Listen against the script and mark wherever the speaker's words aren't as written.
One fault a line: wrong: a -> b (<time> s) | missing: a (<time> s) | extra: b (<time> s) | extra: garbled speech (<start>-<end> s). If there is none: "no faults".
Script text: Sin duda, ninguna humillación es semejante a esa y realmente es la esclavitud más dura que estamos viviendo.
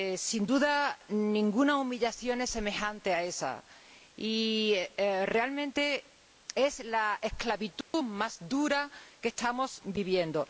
no faults